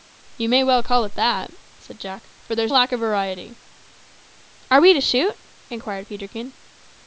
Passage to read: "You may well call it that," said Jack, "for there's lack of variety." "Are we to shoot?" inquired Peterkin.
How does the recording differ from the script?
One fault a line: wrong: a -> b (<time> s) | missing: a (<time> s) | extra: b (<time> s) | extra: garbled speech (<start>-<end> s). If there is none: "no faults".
no faults